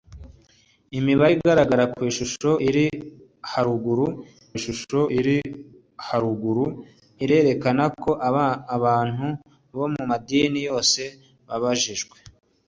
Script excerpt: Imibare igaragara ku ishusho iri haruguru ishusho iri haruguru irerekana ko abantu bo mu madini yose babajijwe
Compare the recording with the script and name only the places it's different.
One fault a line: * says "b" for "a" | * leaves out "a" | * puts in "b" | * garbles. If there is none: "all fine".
all fine